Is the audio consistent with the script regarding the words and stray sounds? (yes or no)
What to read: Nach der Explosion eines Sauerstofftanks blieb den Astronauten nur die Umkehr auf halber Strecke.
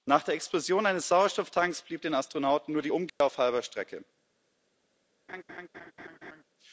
no